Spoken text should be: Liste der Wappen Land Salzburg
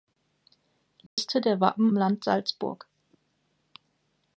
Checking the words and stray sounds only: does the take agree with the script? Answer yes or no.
no